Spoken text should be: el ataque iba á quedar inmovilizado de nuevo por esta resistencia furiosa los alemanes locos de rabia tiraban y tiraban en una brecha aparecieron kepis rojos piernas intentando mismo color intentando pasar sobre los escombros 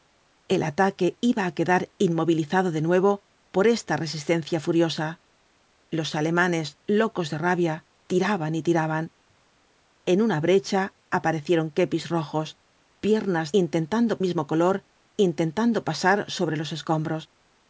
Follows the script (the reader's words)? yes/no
yes